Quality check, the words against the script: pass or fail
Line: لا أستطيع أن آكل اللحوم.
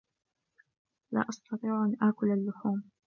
pass